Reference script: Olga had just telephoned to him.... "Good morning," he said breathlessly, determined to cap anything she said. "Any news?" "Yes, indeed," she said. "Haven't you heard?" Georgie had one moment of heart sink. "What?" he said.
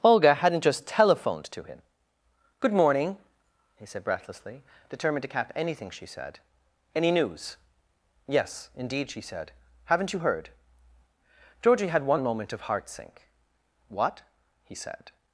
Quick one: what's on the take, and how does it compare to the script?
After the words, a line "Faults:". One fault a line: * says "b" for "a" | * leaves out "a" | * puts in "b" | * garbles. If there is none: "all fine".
Olga hadn't just telephoned to him.... "Good morning," he said breathlessly, determined to cap anything she said. "Any news?" "Yes, indeed," she said. "Haven't you heard?" Georgie had one moment of heart sink. "What?" he said.
Faults:
* says "hadn't" for "had"